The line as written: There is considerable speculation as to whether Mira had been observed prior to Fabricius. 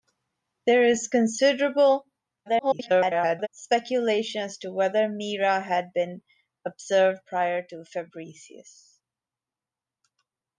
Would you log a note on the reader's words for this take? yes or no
yes